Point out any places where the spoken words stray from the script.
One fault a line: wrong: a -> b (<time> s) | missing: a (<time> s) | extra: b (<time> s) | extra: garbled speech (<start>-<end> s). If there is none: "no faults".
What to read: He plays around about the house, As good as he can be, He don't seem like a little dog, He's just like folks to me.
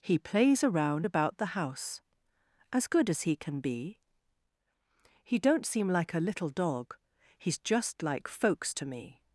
no faults